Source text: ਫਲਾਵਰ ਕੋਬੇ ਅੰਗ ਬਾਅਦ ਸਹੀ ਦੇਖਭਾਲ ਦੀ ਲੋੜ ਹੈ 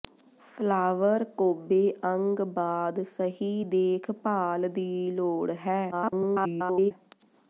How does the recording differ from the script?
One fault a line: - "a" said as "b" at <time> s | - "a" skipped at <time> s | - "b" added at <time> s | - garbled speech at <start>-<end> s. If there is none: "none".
- garbled speech at 5.9-6.9 s